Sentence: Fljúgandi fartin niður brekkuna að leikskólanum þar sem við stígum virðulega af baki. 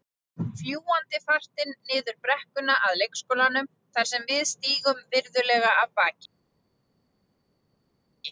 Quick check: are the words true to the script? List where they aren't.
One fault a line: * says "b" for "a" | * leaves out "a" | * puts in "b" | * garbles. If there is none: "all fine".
all fine